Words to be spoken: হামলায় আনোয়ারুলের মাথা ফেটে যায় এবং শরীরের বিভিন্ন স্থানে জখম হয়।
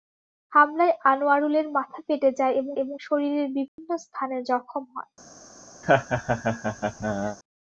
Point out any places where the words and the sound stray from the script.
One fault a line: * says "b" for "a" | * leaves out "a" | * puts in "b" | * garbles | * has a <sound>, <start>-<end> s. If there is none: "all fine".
* puts in "এবং"
* has a dropout, 3.7-3.8 s
* has a laugh, 5.8-7.4 s